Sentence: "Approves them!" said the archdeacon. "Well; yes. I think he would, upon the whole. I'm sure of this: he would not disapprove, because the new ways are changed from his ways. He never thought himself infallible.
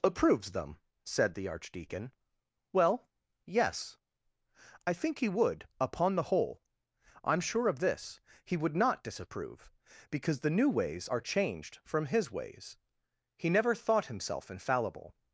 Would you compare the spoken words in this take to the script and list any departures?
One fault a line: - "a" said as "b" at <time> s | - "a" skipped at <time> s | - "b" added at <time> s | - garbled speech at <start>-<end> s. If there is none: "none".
none